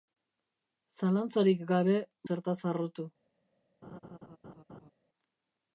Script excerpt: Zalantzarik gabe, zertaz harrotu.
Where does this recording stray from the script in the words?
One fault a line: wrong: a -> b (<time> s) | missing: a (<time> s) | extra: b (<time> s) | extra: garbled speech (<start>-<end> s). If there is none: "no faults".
no faults